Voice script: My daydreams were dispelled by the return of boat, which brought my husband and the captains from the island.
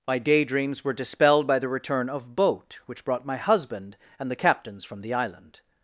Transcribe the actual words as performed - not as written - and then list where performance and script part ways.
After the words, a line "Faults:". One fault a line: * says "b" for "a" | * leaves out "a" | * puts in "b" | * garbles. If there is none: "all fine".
My daydreams were dispelled by the return of boat, which brought my husband and the captains from the island.
Faults:
all fine